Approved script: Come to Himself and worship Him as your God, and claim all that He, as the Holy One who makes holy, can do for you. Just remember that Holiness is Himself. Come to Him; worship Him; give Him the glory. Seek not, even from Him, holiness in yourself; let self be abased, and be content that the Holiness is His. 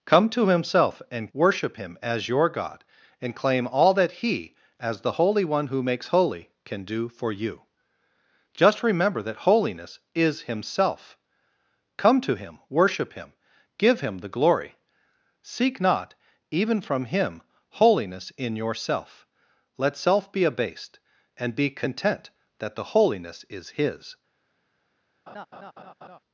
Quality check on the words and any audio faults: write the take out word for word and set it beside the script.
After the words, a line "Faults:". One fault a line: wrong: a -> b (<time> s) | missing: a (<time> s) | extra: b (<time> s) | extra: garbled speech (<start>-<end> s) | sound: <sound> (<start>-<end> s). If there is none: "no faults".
Come to Himself and worship Him as your God, and claim all that He, as the Holy One who makes holy, can do for you. Just remember that Holiness is Himself. Come to Him; worship Him; give Him the glory. Seek not, even from Him, holiness in yourself; let self be abased, and be content that the Holiness is His.
Faults:
sound: laugh (25.3-26.2 s)